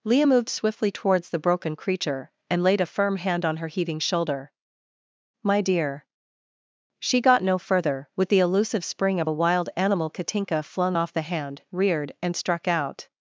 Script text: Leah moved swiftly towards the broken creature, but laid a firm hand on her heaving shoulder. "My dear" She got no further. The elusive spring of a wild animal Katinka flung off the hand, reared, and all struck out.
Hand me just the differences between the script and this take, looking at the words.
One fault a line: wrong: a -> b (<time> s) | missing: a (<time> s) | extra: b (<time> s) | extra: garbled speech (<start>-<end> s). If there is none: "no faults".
wrong: but -> and (2.5 s)
extra: With (8.2 s)
missing: all (12.4 s)